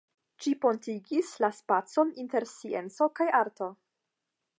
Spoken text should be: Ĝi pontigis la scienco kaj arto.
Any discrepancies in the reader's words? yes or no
yes